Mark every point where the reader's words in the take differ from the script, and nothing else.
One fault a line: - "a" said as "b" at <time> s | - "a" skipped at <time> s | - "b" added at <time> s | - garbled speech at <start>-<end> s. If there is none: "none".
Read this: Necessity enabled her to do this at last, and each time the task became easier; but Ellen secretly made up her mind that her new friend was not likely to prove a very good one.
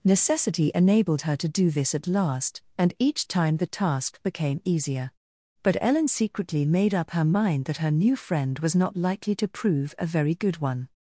none